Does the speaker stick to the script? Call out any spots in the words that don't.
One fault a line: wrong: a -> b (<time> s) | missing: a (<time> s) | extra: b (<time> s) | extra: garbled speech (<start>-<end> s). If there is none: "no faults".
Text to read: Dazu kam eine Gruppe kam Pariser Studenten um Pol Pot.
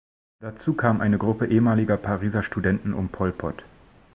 wrong: kam -> ehemaliger (1.4 s)